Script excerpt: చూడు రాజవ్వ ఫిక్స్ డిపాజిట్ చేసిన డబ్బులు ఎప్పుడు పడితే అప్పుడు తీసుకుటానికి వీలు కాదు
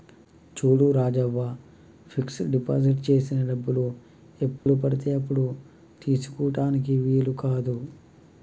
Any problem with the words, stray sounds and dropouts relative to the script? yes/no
yes